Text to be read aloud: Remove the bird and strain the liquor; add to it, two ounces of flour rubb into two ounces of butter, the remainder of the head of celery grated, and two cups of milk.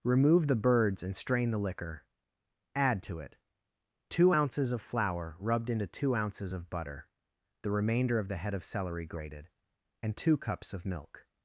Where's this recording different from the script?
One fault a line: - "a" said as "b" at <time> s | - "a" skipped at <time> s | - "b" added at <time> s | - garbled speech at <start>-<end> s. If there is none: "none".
- "bird" said as "birds" at 0.6 s
- "rubb" said as "rubbed" at 5.4 s